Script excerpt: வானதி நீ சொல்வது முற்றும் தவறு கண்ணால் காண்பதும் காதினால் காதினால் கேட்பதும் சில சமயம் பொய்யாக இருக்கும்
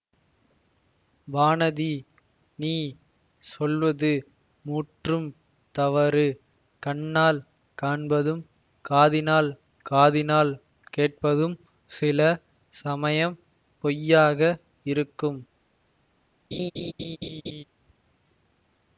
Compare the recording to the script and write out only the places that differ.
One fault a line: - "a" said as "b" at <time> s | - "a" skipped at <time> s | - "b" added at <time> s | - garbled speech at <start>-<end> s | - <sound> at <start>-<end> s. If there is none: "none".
- laugh at 16.5-17.6 s